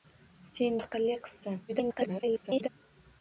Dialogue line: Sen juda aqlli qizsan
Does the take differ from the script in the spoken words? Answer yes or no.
yes